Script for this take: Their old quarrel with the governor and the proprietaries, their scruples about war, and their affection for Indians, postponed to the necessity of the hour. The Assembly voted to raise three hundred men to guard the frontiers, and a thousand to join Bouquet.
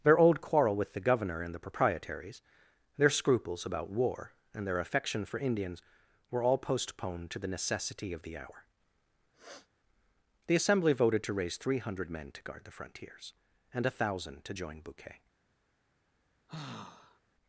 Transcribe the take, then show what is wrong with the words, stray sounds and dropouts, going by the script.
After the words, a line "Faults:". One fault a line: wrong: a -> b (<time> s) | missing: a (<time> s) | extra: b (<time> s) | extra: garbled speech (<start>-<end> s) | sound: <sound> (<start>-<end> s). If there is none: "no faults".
Their old quarrel with the governor and the proprietaries, their scruples about war, and their affection for Indians, were all postponed to the necessity of the hour. The Assembly voted to raise three hundred men to guard the frontiers, and a thousand to join Bouquet.
Faults:
extra: were all (6.3 s)
sound: sniff (9.3-9.7 s)
sound: sigh (16.5-17.2 s)